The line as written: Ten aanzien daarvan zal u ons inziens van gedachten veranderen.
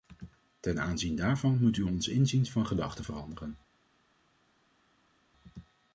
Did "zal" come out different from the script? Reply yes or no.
yes